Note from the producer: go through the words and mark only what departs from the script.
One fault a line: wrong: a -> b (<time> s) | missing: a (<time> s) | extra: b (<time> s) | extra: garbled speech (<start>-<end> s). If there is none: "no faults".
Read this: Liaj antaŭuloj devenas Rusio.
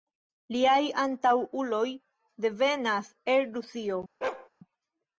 extra: el (3.4 s)